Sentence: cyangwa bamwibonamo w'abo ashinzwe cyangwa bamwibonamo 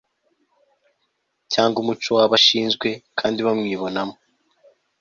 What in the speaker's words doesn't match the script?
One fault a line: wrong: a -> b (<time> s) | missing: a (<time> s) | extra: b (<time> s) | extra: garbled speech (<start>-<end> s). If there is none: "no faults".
wrong: bamwibonamo -> umuco (1.8 s)
wrong: cyangwa -> kandi (3.2 s)